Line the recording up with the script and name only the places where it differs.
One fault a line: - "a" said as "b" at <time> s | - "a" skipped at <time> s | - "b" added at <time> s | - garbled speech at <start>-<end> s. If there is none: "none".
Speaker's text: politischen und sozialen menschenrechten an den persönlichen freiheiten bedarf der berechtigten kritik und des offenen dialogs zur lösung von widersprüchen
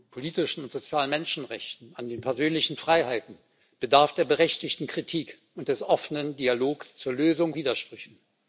- "von" skipped at 7.5 s